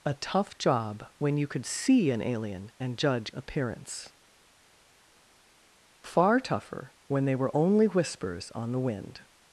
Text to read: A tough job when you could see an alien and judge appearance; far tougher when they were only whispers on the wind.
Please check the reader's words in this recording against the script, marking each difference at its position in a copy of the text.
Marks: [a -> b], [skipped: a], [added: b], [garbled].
A tough job when you could see an alien and judge appearance; far tougher when they were only whispers on the wind.